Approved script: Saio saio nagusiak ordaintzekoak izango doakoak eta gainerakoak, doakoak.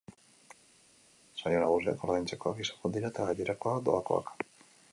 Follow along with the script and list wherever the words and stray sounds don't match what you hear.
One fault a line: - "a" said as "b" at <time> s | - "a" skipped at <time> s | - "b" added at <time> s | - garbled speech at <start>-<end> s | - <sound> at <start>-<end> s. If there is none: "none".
- "saio" skipped at 1.6 s
- "doakoak" said as "dira" at 3.0 s